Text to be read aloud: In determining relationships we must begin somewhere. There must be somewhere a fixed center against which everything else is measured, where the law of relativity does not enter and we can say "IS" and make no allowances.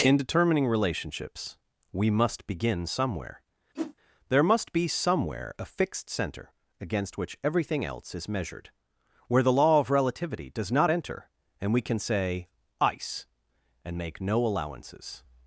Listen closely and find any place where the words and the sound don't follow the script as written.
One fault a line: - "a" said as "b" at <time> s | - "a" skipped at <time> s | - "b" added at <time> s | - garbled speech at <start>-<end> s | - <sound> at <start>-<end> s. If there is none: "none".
- whoosh at 3.7-3.9 s
- "IS" said as "Ice" at 12.8 s